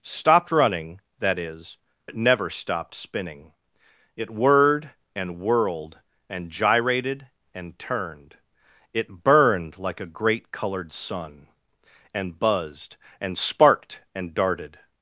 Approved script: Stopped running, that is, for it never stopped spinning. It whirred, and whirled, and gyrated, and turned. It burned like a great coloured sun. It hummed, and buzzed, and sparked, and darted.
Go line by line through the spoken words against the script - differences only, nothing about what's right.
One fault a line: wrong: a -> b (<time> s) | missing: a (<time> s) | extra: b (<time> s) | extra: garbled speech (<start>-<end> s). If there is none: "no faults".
missing: for (1.8 s)
missing: It hummed (11.5 s)